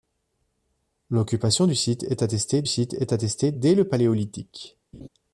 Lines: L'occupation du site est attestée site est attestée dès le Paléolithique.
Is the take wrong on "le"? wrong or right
right